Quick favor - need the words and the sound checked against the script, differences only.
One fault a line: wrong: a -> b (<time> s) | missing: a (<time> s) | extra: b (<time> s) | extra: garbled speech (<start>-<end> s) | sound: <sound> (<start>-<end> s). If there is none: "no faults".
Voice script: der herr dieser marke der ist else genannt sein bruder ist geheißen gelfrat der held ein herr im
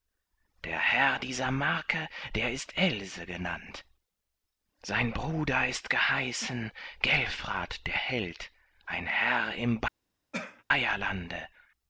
sound: cough (10.3-10.6 s)